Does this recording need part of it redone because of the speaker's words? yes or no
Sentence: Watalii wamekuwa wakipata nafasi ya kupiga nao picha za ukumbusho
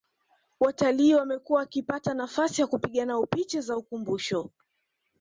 no